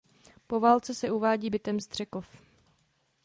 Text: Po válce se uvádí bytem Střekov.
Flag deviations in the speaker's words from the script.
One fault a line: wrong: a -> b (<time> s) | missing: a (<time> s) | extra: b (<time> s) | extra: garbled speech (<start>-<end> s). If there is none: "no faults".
no faults